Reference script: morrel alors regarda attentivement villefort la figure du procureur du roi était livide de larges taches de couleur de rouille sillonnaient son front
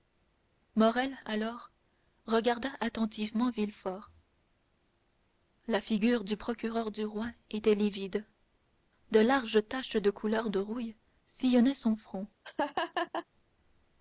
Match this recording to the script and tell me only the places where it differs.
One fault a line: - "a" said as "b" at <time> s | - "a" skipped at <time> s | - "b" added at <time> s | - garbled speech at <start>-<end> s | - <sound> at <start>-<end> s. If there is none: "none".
- laugh at 12.4-13.3 s